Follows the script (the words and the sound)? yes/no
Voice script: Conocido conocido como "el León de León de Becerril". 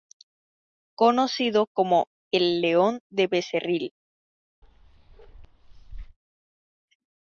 no